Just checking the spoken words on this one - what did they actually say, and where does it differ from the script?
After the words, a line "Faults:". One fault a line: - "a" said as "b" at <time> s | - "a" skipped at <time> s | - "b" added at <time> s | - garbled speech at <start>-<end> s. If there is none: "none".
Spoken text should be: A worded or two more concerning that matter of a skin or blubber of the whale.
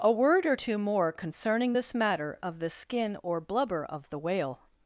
A word or two more concerning this matter of the skin or blubber of the whale.
Faults:
- "worded" said as "word" at 0.1 s
- "that" said as "this" at 1.7 s
- "a" said as "the" at 2.6 s